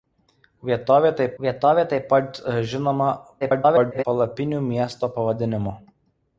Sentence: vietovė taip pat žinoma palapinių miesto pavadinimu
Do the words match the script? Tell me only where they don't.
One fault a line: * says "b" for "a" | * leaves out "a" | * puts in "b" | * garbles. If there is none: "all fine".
* puts in "vietovė taip"
* garbles